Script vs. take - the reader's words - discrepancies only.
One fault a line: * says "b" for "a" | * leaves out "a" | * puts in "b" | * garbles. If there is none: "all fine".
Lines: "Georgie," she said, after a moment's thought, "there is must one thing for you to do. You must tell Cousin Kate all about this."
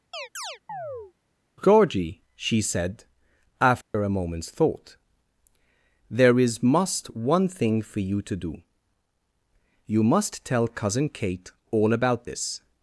all fine